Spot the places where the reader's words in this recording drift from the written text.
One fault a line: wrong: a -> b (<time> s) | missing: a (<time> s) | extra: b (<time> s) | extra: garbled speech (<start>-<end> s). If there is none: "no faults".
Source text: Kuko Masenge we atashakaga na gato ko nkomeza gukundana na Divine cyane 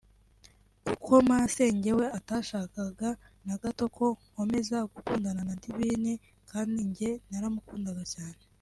extra: kandi njye naramukundaga (6.5 s)